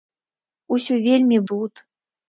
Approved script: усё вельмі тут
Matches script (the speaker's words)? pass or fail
pass